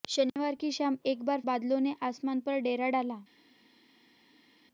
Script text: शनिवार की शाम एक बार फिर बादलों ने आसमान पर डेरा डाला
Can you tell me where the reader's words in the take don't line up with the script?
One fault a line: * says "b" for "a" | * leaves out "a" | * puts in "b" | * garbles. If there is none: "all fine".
* leaves out "फिर"